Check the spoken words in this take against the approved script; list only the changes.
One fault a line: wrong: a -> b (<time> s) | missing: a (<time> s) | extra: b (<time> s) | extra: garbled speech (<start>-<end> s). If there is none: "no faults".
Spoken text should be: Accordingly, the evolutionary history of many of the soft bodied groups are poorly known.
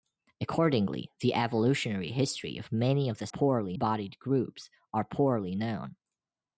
wrong: soft -> poorly (3.3 s)